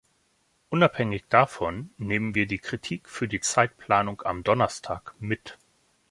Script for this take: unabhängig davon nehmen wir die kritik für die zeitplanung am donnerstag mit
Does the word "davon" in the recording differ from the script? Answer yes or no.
no